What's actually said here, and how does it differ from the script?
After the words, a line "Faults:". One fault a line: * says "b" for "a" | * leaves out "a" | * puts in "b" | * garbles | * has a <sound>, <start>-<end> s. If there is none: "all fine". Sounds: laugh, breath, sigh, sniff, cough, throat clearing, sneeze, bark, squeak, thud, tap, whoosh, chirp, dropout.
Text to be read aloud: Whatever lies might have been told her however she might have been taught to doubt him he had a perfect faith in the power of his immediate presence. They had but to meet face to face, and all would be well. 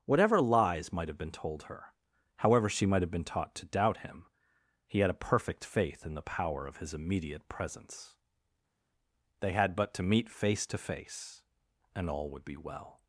Whatever lies might have been told her however she might have been taught to doubt him he had a perfect faith in the power of his immediate presence. They had but to meet face to face, and all would be well.
Faults:
all fine